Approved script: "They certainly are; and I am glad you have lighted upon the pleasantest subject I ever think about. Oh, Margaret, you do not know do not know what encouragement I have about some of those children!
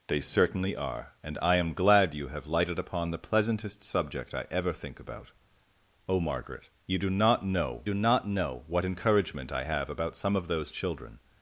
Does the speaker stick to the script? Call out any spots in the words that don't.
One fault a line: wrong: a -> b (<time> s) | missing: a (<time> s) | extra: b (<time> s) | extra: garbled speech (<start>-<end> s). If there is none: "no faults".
no faults